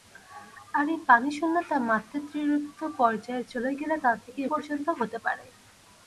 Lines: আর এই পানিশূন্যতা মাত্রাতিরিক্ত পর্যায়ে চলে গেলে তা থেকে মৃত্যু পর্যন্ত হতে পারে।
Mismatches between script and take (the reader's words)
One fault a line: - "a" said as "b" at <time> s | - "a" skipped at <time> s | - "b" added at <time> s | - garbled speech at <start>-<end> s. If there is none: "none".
- "মৃত্যু" skipped at 4.4 s